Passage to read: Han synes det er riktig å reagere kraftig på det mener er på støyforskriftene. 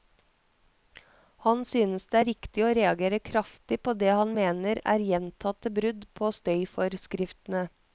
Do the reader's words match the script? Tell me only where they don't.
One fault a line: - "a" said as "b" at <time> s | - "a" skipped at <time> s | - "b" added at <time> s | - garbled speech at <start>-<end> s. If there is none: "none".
- "han" added at 4.2 s
- "gjentatte brudd" added at 5.1 s